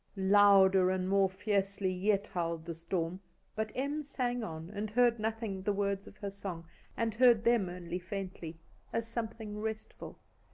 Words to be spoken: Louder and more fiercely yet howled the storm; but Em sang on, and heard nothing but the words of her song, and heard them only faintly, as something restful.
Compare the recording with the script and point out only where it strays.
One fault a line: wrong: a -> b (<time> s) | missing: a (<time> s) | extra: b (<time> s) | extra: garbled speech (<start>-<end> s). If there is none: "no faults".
missing: but (5.6 s)